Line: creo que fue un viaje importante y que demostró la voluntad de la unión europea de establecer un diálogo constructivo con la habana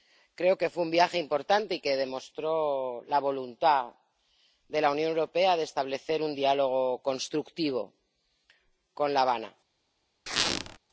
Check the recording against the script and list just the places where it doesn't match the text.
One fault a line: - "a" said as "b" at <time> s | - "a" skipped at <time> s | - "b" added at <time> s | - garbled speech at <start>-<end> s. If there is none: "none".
none